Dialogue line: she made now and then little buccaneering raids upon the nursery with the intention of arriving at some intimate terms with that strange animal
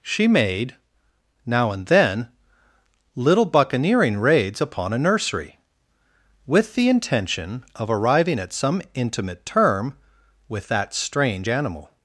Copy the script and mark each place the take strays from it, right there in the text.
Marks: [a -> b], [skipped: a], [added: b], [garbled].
she made now and then little buccaneering raids upon [the -> a] nursery with the intention of arriving at some intimate [terms -> term] with that strange animal